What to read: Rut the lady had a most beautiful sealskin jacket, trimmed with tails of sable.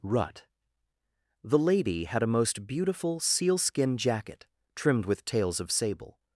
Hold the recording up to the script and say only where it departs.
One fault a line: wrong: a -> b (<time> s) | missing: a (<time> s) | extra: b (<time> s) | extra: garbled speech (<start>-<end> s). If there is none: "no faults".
no faults